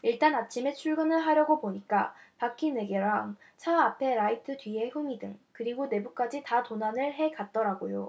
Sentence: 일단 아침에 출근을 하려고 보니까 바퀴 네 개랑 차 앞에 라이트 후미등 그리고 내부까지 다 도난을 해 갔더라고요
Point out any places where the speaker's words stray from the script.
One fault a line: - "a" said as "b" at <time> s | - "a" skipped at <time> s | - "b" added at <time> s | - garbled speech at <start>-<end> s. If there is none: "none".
- "뒤에" added at 4.6 s